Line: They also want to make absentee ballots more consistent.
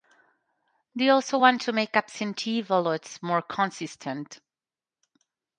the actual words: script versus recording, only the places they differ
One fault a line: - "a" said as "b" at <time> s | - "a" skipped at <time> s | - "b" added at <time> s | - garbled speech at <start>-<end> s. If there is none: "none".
none